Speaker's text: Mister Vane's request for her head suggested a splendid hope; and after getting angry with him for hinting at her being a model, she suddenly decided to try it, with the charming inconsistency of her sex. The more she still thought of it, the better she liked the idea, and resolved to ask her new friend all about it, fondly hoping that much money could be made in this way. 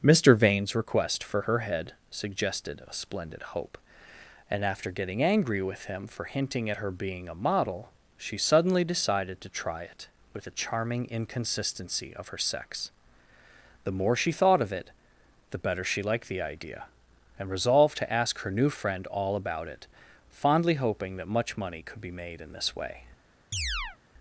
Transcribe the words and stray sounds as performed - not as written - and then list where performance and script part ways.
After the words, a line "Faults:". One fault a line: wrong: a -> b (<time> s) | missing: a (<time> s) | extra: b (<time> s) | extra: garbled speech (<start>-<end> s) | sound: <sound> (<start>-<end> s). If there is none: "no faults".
Mister Vane's request for her head suggested a splendid hope; and after getting angry with him for hinting at her being a model, she suddenly decided to try it, with the charming inconsistency of her sex. The more she thought of it, the better she liked the idea, and resolved to ask her new friend all about it, fondly hoping that much money could be made in this way.
Faults:
missing: still (14.3 s)
sound: chirp (23.5-24.0 s)